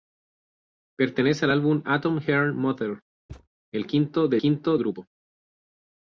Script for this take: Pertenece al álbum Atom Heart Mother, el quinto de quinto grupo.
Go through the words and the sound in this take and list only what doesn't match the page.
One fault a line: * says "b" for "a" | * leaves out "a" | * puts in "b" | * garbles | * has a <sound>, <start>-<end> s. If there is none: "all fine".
* has a thud, 3.3-3.5 s